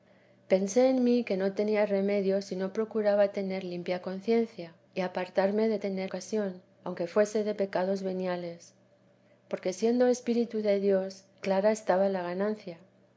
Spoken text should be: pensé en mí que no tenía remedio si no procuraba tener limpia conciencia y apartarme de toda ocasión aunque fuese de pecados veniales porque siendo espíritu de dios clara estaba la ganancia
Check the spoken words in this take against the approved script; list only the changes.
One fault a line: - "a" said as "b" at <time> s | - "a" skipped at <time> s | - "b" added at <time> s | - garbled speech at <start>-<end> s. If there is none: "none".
- "toda" said as "tener" at 5.8 s